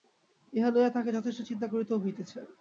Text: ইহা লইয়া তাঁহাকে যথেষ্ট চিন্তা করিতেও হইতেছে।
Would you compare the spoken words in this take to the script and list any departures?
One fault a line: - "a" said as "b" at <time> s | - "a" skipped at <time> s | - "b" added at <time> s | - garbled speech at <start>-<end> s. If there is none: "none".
none